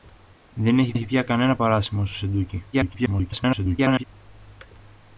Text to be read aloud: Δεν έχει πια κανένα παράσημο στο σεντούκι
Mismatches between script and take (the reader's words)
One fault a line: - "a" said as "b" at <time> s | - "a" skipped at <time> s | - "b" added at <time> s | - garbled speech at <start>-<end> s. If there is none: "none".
- "έχει" added at 0.9 s
- garbled speech at 2.7-4.0 s